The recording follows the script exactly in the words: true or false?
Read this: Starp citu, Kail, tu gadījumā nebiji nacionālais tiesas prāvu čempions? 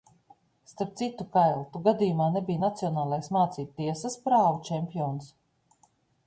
false